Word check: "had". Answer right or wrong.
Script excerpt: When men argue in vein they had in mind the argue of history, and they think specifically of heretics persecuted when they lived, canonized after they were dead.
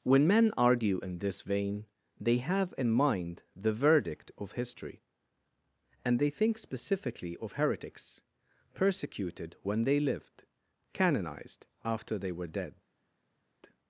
wrong